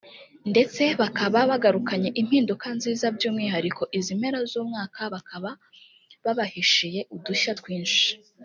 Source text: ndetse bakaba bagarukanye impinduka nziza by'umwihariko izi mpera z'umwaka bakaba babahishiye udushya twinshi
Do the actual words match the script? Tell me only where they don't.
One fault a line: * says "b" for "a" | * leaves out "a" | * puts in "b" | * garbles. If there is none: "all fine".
all fine